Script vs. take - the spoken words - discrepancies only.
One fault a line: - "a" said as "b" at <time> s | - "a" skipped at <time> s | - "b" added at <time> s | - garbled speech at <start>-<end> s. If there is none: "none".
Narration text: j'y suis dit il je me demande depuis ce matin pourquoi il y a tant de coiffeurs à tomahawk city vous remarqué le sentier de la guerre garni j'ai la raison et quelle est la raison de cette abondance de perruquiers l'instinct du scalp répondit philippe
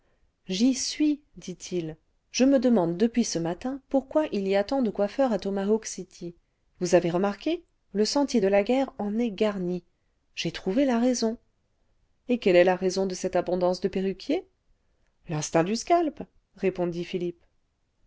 - "avez" added at 7.0 s
- "en est" added at 9.0 s
- "trouvé" added at 10.5 s